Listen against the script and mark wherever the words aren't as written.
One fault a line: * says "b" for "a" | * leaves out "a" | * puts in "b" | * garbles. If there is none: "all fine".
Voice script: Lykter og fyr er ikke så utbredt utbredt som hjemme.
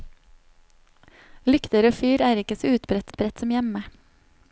all fine